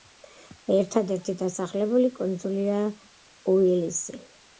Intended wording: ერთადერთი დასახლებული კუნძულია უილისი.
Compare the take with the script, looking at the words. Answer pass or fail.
pass